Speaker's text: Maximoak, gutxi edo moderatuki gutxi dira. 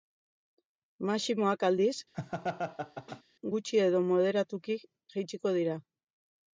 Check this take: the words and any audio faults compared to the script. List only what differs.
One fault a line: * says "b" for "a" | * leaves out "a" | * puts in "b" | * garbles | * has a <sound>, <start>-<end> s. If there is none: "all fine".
* puts in "aldiz"
* has a laugh, 2.1-3.2 s
* says "jaitsiko" for "gutxi"